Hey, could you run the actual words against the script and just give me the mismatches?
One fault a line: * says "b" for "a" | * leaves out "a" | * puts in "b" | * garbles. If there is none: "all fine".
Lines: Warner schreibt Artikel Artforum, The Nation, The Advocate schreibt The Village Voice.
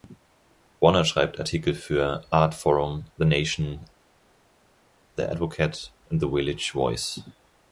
* puts in "für"
* says "und" for "schreibt"